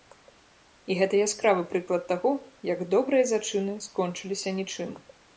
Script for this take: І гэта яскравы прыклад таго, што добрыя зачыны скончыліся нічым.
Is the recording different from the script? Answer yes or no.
yes